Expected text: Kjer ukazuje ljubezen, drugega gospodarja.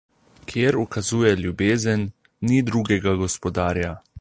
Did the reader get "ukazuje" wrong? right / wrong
right